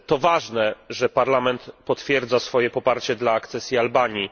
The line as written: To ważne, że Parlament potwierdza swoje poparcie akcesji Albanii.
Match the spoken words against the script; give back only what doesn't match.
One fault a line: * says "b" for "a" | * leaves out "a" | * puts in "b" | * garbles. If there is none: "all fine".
* puts in "dla"